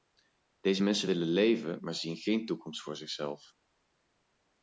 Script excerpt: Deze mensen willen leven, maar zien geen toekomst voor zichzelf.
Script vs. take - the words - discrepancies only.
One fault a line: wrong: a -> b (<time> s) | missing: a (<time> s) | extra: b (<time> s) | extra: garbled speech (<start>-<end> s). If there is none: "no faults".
no faults